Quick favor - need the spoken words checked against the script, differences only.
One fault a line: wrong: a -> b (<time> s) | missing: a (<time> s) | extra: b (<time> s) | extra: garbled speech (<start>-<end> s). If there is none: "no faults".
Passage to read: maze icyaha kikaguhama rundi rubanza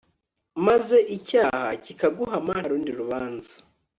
no faults